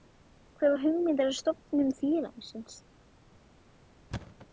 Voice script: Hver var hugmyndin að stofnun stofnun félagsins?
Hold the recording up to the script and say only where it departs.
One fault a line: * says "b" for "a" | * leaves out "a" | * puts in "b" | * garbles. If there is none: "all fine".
* leaves out "stofnun"